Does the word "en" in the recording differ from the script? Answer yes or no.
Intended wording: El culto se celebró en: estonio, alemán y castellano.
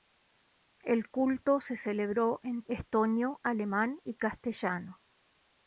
no